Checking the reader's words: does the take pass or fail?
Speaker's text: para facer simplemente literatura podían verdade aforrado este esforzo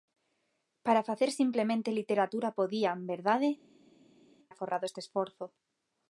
pass